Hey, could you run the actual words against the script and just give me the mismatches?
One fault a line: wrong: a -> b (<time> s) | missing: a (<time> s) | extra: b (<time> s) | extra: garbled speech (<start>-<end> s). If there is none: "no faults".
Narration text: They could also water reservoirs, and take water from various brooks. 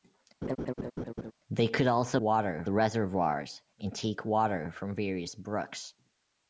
no faults